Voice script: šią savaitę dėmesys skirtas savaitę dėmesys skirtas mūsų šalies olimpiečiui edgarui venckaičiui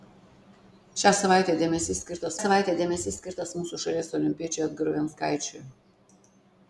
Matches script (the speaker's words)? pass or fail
pass